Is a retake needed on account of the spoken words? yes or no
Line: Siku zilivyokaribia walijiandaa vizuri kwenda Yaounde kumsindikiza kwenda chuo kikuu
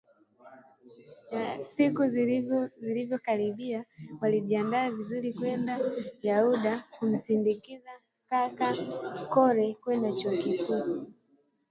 yes